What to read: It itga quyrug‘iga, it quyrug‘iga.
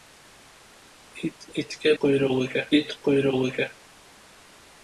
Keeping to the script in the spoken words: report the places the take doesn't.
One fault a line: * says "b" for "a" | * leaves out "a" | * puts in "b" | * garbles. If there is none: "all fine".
all fine